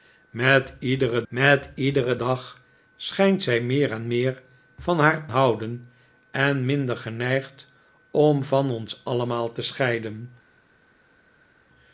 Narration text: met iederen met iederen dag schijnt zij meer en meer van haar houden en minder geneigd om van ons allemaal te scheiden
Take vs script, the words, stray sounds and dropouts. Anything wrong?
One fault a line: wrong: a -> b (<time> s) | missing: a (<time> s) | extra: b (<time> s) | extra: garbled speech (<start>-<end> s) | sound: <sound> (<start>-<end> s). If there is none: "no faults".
no faults